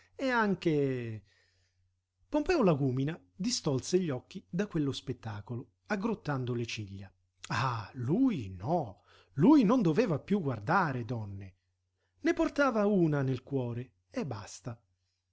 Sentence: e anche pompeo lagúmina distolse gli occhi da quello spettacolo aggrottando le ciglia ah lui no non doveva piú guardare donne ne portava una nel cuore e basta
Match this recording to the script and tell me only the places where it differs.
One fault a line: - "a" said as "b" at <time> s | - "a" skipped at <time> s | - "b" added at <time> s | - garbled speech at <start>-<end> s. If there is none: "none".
- "lui" added at 9.3 s